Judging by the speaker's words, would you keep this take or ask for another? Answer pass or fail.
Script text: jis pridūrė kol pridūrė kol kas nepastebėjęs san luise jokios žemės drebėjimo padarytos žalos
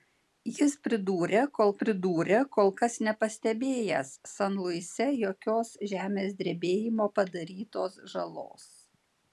pass